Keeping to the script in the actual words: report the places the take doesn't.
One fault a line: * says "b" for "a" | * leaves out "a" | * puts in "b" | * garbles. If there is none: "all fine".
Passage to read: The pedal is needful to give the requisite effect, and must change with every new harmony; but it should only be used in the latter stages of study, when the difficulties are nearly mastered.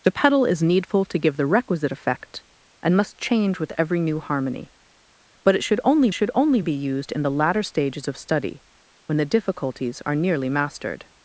* puts in "should only"